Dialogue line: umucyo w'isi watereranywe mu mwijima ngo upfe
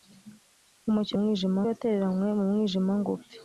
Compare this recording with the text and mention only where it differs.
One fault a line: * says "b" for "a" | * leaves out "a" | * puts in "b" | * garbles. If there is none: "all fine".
* says "mwijima" for "w'isi"